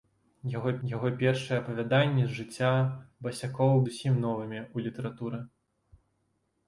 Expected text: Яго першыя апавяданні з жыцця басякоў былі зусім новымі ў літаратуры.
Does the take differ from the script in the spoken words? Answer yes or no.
yes